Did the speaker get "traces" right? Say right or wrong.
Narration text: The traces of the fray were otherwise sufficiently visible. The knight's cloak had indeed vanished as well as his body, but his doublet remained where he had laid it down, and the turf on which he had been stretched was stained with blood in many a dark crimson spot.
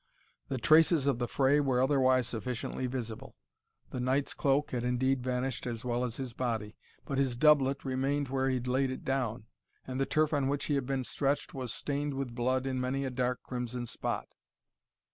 right